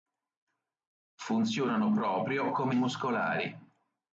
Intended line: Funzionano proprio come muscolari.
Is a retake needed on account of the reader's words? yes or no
no